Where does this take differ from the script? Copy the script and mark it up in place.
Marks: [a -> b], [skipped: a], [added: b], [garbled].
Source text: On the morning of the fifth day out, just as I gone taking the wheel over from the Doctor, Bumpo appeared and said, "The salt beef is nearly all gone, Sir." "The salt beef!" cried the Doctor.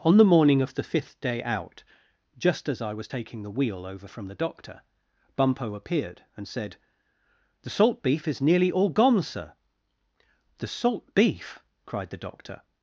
On the morning of the fifth day out, just as I [gone -> was] taking the wheel over from the Doctor, Bumpo appeared and said, "The salt beef is nearly all gone, Sir." "The salt beef!" cried the Doctor.